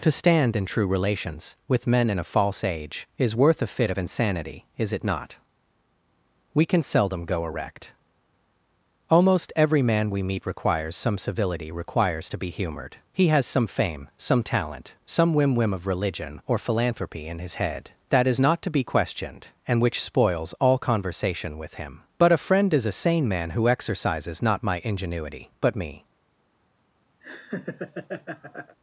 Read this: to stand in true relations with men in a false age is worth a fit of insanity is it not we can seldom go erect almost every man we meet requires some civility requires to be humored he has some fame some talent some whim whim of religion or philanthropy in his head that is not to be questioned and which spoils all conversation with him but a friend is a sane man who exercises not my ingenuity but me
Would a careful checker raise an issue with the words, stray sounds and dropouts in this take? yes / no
yes